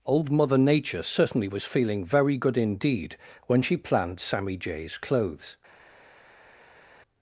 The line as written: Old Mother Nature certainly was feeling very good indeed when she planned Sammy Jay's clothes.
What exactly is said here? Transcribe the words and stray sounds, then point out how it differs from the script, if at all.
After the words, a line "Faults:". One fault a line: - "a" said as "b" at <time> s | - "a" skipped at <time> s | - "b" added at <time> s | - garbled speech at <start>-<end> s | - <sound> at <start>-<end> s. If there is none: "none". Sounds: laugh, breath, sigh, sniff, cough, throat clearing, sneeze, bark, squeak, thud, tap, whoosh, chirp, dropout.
Old Mother Nature certainly was feeling very good indeed when she planned Sammy Jay's clothes.
Faults:
none